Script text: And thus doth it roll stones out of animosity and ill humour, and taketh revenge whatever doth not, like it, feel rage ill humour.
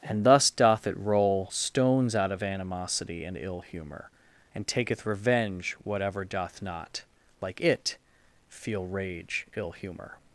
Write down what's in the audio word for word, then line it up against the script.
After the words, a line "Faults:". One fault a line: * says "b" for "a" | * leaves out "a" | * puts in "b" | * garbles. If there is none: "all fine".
And thus doth it roll stones out of animosity and ill humour, and taketh revenge whatever doth not, like it, feel rage ill humour.
Faults:
all fine